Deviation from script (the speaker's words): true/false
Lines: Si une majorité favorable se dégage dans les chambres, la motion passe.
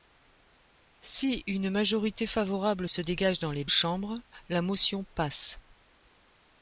false